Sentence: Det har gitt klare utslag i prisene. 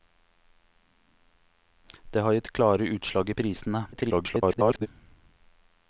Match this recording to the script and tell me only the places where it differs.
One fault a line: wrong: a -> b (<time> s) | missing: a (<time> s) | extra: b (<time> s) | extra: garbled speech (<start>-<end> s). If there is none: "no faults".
extra: garbled speech (3.9-4.9 s)